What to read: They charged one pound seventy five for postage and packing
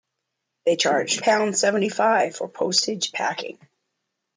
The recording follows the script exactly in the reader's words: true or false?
false